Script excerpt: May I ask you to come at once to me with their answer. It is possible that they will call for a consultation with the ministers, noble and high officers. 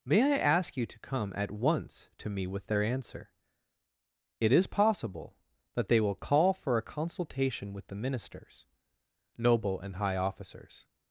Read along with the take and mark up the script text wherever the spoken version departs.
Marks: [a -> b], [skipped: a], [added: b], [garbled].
May I ask you to come at once to me with their answer. It is possible that they will call for a consultation with the ministers, noble and high officers.